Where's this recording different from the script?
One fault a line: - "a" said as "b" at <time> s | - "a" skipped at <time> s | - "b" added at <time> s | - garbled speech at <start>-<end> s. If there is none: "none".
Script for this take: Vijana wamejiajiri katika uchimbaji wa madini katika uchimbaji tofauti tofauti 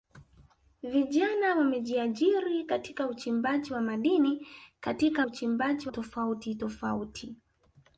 none